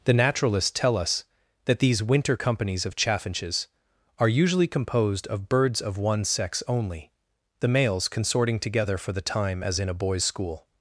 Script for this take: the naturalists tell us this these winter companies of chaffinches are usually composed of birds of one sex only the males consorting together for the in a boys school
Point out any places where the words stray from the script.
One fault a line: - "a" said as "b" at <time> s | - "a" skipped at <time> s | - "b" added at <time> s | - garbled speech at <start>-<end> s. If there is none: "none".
- "this" said as "that" at 1.6 s
- "time as" added at 9.2 s